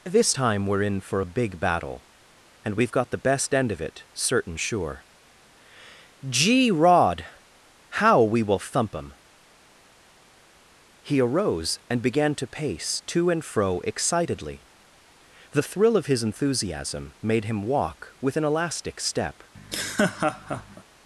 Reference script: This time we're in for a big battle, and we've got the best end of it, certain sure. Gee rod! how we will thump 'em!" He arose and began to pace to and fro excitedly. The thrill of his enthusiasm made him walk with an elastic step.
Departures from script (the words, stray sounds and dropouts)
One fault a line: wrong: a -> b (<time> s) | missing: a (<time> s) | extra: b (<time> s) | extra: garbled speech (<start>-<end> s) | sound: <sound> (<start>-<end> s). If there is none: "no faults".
sound: laugh (19.5-20.8 s)